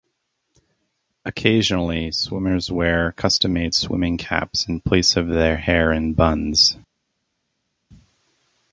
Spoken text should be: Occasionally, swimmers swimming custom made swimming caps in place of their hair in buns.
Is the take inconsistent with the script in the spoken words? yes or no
yes